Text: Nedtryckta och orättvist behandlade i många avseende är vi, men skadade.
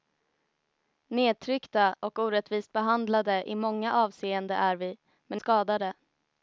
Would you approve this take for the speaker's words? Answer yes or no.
yes